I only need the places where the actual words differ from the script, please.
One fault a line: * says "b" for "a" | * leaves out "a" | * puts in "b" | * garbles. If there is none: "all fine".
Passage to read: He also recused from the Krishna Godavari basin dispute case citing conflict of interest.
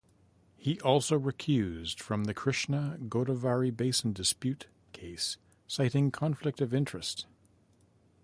all fine